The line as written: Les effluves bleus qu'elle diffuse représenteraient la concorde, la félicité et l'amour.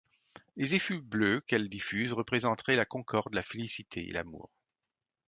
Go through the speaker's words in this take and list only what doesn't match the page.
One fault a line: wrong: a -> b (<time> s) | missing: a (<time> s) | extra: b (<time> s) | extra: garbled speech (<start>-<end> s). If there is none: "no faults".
no faults